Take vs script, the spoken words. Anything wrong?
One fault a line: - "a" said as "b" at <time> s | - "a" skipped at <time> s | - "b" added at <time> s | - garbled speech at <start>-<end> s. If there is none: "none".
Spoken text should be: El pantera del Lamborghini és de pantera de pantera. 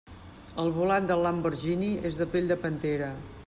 - "pantera" said as "volant" at 0.8 s
- "pantera" said as "pell" at 2.3 s